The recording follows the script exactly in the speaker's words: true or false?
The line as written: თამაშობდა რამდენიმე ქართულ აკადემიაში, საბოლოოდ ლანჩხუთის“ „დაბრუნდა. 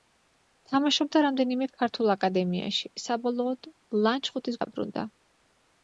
true